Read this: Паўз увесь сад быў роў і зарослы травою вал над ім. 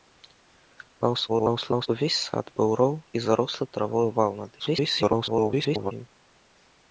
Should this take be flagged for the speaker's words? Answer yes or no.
yes